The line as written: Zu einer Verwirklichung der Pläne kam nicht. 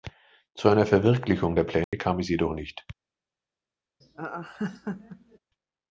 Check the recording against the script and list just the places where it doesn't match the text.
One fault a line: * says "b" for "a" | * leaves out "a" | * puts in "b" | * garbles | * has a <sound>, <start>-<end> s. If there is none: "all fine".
* has a dropout, 1.8-1.9 s
* puts in "es jedoch"
* has a laugh, 4.0-5.4 s